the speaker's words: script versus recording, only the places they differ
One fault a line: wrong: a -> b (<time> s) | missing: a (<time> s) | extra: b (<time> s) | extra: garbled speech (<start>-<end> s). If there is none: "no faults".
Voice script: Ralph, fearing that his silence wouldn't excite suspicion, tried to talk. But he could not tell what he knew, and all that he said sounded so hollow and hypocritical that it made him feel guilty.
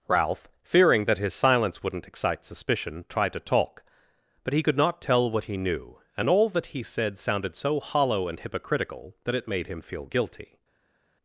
no faults